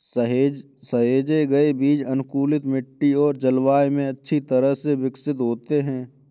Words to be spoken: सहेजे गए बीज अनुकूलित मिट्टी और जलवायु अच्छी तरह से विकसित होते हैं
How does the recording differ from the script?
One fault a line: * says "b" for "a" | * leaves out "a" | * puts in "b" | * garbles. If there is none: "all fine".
* puts in "में"